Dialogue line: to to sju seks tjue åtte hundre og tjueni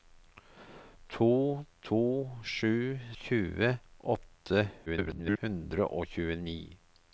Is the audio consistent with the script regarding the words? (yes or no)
no